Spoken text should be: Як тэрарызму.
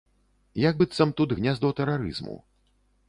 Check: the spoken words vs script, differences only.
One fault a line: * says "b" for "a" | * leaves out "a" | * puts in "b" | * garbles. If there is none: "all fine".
* puts in "быццам тут гняздо"